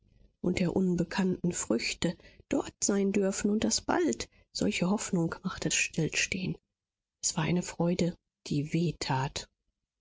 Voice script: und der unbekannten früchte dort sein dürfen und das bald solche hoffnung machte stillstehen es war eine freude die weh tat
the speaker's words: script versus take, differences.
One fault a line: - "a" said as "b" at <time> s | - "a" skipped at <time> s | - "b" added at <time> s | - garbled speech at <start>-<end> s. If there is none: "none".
none